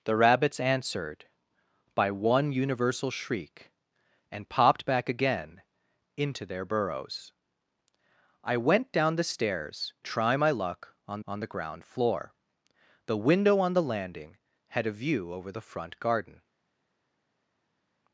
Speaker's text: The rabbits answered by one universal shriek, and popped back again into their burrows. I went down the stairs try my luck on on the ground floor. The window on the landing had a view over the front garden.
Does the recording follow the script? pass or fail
pass